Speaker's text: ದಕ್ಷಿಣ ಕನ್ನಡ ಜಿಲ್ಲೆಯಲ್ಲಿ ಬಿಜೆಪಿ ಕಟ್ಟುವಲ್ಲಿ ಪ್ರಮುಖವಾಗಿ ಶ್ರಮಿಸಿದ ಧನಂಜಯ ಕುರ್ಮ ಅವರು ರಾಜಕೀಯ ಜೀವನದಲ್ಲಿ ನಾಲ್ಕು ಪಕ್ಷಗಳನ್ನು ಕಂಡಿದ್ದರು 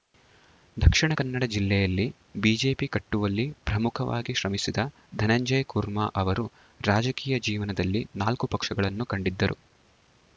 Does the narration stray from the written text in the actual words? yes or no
no